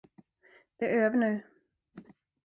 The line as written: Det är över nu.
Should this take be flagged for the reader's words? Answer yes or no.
no